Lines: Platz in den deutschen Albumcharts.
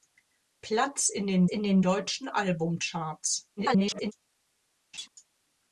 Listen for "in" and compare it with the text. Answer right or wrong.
right